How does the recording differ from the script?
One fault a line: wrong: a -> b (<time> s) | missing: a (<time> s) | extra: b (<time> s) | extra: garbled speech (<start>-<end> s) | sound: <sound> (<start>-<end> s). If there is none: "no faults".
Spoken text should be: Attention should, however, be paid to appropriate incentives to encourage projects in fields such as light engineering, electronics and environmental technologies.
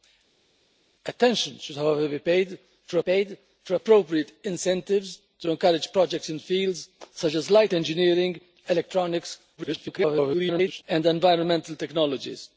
extra: paid to (3.0 s)
extra: garbled speech (9.6-10.8 s)